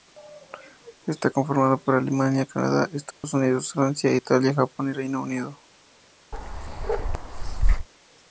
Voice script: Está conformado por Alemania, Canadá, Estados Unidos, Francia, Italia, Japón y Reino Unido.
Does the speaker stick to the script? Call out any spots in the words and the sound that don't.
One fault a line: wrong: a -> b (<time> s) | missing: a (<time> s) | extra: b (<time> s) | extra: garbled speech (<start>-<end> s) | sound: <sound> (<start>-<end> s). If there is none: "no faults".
sound: dropout (3.1-3.2 s)
sound: bark (6.3-7.9 s)